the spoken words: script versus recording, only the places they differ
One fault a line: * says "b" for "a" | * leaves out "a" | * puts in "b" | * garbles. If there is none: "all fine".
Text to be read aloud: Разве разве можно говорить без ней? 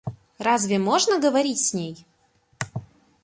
* leaves out "разве"
* says "с" for "без"